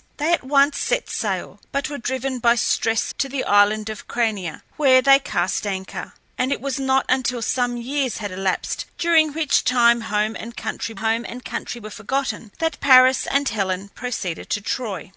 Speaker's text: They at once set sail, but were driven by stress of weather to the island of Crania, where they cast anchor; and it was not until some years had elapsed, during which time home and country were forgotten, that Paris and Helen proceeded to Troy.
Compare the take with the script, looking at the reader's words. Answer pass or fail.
fail